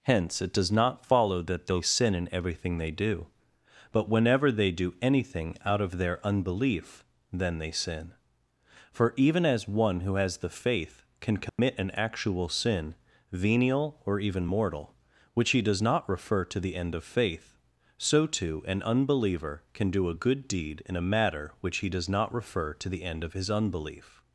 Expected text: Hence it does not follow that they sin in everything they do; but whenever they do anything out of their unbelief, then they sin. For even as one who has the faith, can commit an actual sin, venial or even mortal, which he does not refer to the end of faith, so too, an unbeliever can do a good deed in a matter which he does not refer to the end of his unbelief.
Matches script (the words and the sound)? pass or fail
fail